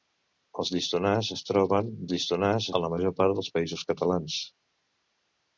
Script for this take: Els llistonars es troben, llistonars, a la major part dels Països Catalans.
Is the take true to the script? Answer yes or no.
yes